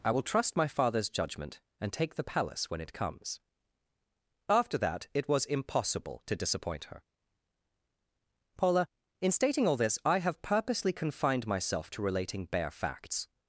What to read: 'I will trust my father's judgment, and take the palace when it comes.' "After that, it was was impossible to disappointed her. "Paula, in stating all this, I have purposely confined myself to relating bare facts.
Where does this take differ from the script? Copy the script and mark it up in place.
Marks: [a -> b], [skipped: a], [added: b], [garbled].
'I will trust my father's judgment, and take the palace when it comes.' "After that, it was [skipped: was] impossible to [disappointed -> disappoint] her. "Paula, in stating all this, I have purposely confined myself to relating bare facts.